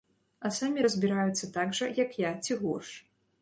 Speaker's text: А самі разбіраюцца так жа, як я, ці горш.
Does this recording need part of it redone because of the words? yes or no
no